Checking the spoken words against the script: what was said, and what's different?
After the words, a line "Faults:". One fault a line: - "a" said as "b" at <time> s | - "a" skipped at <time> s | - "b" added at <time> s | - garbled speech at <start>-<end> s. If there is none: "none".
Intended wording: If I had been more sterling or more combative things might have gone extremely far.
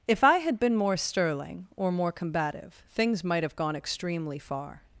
If I had been more sterling or more combative things might have gone extremely far.
Faults:
none